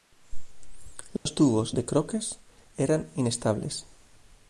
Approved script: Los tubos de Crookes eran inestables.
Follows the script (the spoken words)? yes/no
yes